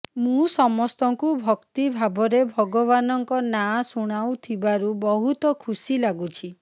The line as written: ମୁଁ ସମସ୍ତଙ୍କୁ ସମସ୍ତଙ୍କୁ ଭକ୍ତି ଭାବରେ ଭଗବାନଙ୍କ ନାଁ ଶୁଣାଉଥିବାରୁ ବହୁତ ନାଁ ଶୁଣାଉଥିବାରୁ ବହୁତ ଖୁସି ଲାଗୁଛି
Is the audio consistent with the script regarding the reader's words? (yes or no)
no